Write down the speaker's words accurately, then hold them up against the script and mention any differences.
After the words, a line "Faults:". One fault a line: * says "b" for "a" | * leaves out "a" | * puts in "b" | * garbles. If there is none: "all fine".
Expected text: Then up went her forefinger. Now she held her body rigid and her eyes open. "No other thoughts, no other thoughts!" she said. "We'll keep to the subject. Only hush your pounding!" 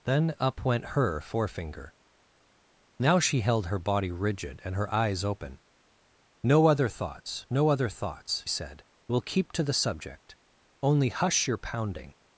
Then up went her forefinger. Now she held her body rigid and her eyes open. "No other thoughts, no other thoughts!" said. "We'll keep to the subject. Only hush your pounding!"
Faults:
* leaves out "she"